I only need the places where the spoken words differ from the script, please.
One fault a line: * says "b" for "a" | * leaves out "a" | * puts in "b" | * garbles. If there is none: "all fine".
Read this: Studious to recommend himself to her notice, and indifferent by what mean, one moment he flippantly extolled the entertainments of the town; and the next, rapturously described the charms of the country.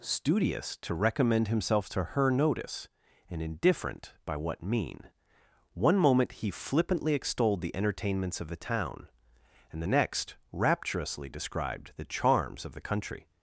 all fine